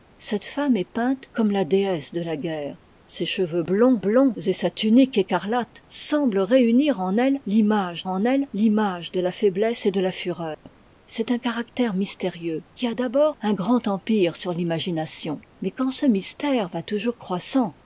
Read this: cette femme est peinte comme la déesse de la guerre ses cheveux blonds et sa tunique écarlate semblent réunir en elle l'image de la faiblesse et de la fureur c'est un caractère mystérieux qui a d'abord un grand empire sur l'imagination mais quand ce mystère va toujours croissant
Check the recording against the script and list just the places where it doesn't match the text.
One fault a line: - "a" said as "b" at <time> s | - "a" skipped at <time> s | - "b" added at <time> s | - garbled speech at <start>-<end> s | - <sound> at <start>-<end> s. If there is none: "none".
- "blonds" added at 4.0 s
- "en elle l'image" added at 8.1 s
- dropout at 10.5-10.7 s